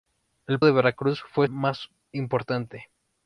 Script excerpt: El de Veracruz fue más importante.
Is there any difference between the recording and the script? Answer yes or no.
no